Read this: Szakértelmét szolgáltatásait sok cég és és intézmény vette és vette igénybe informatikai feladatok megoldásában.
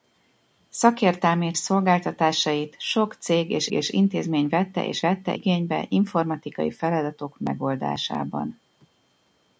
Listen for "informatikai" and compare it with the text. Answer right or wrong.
right